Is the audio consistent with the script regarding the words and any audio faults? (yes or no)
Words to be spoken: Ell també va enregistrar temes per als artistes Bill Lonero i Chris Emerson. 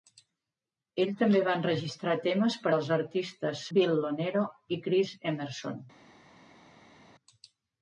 yes